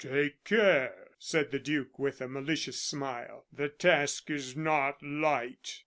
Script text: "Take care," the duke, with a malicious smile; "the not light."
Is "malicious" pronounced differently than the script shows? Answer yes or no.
no